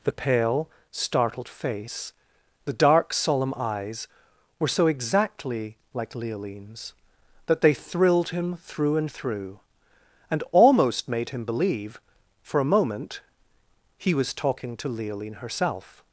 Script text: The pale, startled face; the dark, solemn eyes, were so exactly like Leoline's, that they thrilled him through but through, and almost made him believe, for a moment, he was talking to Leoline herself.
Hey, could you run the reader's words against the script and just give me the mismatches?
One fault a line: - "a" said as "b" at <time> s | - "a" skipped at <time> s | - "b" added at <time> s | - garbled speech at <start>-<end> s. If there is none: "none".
- "but" said as "and" at 8.9 s